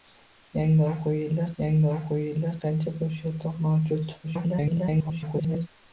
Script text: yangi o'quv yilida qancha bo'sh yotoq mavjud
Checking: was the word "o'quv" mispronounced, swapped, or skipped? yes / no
no